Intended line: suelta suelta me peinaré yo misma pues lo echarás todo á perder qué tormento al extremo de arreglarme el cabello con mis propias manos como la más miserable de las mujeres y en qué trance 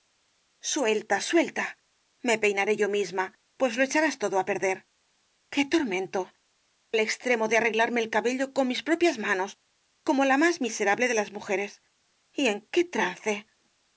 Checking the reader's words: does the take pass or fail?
pass